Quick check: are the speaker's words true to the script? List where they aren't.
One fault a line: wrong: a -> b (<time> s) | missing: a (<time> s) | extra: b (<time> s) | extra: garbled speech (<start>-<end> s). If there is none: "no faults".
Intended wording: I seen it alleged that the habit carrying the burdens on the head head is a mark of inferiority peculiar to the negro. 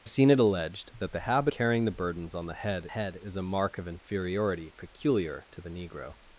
no faults